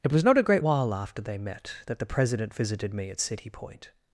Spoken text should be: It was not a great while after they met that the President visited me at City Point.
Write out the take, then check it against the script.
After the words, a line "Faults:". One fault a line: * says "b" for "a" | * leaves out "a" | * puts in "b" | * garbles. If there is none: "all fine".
It was not a great while after they met that the President visited me at City Point.
Faults:
all fine